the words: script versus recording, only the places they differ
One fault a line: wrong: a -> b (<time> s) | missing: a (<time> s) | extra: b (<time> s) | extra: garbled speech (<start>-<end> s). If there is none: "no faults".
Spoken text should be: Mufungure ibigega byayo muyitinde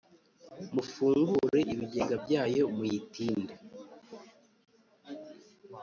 no faults